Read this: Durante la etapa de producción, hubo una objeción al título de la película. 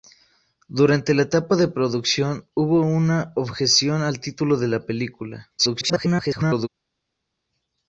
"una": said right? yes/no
yes